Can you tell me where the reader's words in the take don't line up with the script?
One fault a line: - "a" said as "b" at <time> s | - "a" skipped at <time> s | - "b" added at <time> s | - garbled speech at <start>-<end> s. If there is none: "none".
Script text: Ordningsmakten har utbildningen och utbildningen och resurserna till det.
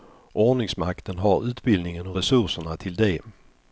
- "utbildningen och" skipped at 2.2 s